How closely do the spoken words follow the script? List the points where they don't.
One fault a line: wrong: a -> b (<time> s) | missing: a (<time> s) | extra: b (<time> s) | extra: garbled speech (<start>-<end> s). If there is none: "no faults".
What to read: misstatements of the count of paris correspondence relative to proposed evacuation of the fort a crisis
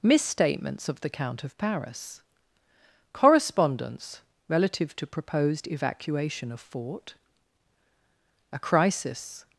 missing: the (6.6 s)